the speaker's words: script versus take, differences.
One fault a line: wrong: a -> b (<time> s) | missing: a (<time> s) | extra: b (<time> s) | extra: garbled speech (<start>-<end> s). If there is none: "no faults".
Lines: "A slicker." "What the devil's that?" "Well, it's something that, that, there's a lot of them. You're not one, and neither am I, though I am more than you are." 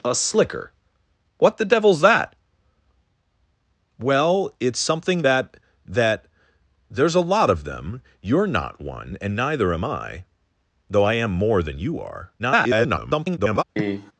extra: garbled speech (12.4-13.6 s)